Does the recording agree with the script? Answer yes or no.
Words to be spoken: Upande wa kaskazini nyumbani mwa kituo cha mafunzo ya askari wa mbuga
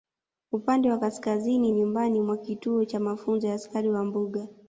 yes